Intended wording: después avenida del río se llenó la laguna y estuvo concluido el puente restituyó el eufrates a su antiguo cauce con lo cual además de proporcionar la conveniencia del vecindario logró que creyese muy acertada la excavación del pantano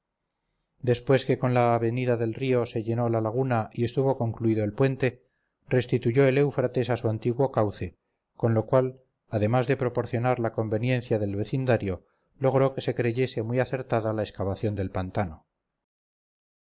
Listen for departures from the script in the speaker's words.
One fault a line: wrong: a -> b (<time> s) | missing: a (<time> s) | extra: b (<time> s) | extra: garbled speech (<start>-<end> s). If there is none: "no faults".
extra: que con la (1.3 s)
extra: se (12.8 s)